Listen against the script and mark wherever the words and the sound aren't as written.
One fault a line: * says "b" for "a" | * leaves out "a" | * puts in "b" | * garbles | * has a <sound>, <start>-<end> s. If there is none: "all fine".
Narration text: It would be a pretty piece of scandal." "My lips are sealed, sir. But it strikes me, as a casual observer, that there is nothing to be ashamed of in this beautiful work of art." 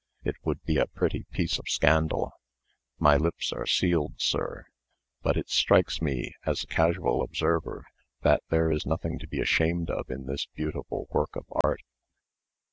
* has a dropout, 11.6-11.6 s